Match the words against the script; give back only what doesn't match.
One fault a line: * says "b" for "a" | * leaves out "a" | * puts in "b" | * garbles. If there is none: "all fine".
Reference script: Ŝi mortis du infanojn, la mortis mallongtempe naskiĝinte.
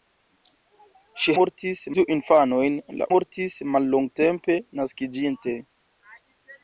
all fine